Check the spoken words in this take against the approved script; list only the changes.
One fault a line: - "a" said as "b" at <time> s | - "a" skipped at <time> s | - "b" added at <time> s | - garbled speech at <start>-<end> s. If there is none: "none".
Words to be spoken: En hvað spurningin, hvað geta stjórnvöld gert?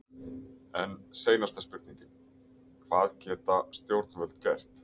- "hvað" said as "seinasta" at 1.2 s